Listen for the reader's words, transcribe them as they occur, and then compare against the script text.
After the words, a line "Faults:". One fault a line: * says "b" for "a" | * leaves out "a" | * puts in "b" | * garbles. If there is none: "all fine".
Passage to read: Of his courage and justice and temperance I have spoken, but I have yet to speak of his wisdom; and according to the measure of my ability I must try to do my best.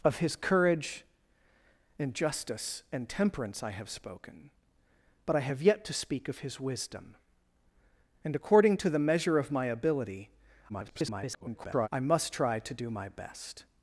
Of his courage and justice and temperance I have spoken, but I have yet to speak of his wisdom; and according to the measure of my ability [garbled] I must try to do my best.
Faults:
* garbles